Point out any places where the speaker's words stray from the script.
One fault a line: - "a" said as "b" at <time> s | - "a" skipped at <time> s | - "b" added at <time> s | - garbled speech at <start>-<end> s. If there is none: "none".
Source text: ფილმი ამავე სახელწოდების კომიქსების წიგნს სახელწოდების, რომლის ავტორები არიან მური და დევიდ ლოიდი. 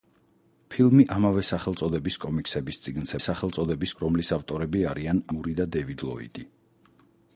none